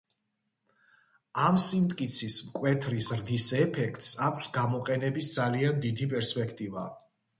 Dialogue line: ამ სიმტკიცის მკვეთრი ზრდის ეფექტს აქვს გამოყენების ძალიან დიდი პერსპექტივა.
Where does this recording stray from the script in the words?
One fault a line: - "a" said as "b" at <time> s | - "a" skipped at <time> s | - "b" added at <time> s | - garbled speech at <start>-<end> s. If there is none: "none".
none